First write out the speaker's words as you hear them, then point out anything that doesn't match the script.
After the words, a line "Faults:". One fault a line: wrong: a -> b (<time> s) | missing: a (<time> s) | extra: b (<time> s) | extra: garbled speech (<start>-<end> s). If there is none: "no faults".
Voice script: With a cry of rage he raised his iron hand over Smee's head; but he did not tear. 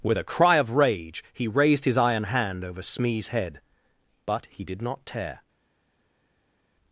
With a cry of rage he raised his iron hand over Smee's head; but he did not tear.
Faults:
no faults